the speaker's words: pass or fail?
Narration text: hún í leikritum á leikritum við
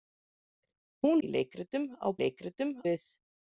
pass